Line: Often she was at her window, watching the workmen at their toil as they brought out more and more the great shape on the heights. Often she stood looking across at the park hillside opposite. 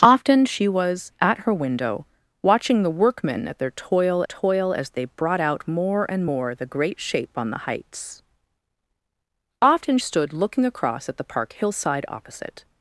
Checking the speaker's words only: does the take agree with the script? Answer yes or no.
no